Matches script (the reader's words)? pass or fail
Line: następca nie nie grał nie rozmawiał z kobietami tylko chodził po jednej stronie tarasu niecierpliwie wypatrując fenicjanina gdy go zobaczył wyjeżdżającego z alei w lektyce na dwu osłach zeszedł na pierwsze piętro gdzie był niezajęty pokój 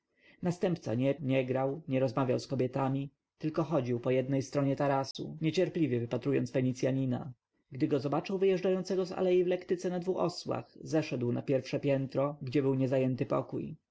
pass